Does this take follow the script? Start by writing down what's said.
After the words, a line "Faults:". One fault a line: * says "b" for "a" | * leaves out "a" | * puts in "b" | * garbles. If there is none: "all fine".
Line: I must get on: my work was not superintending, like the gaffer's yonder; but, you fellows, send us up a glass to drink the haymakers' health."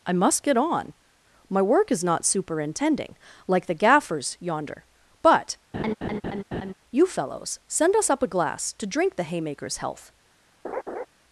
I must get on: my work is not superintending, like the gaffer's yonder; but, you fellows, send us up a glass to drink the haymakers' health."
Faults:
* says "is" for "was"